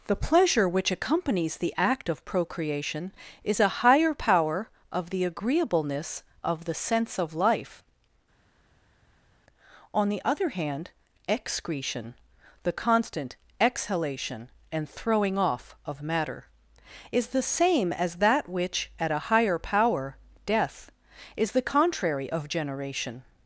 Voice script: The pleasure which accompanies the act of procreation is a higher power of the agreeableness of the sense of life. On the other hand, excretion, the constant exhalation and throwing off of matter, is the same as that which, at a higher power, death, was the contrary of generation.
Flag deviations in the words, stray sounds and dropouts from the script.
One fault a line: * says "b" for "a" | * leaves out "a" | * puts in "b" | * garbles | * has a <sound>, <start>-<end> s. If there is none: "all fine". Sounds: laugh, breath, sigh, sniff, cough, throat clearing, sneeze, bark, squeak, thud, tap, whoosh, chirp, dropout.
* says "is" for "was"